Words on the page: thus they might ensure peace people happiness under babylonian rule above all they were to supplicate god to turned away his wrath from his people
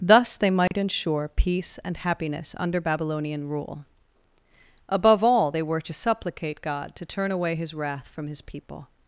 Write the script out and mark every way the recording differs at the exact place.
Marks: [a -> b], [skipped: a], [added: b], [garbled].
thus they might ensure peace [people -> and] happiness under babylonian rule above all they were to supplicate god to [turned -> turn] away his wrath from his people